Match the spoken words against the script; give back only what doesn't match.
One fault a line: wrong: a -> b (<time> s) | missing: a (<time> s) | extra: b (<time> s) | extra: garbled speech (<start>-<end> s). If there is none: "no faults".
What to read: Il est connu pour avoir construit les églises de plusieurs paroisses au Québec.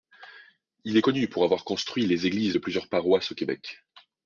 no faults